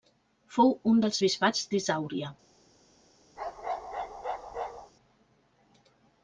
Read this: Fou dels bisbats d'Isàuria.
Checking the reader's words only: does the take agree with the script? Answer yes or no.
no